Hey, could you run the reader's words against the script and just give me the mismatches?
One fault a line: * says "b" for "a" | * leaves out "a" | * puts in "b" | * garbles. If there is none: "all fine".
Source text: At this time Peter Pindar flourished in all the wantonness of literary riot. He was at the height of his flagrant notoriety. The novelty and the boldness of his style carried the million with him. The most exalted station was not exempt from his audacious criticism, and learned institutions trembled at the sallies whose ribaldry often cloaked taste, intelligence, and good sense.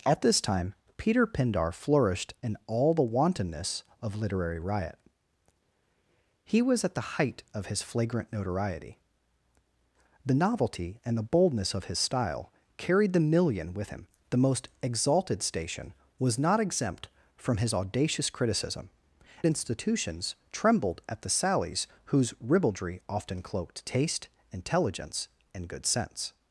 * leaves out "and learned"